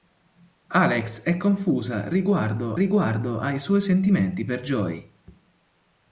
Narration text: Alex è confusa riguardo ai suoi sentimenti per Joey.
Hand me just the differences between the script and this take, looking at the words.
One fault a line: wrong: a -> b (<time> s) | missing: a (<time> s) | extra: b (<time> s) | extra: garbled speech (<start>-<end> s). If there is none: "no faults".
extra: riguardo (2.7 s)